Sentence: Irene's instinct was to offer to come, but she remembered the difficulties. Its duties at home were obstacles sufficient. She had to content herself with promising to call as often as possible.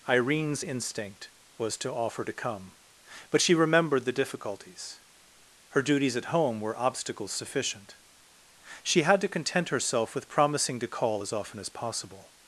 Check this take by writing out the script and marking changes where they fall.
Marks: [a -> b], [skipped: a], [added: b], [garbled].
Irene's instinct was to offer to come, but she remembered the difficulties. [Its -> Her] duties at home were obstacles sufficient. She had to content herself with promising to call as often as possible.